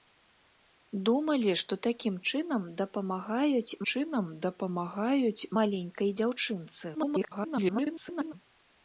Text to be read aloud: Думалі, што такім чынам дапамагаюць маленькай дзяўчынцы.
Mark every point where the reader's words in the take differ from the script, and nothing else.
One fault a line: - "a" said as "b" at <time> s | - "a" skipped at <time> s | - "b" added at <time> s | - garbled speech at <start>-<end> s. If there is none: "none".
- "чынам дапамагаюць" added at 3.9 s
- garbled speech at 6.9-8.3 s